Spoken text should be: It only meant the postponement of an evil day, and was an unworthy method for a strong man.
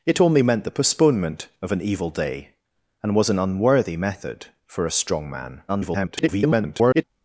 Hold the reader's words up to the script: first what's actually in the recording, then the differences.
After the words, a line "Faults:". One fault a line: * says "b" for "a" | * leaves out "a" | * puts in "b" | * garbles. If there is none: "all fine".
It only meant the postponement of an evil day, and was an unworthy method for a strong man. [garbled]
Faults:
* garbles